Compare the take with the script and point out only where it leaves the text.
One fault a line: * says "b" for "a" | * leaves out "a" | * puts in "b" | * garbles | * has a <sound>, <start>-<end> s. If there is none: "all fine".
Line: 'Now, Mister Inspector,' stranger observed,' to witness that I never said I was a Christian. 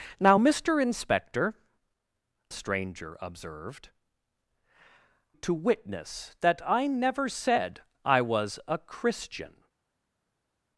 all fine